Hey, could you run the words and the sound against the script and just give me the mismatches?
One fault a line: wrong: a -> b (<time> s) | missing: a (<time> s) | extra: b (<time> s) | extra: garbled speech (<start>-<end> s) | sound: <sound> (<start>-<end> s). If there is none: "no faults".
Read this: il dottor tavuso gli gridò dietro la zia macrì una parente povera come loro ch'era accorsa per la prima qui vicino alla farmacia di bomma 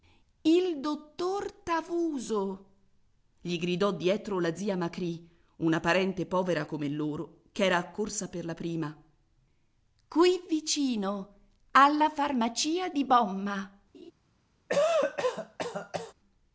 sound: laugh (13.9-14.1 s)
sound: cough (14.7-16.1 s)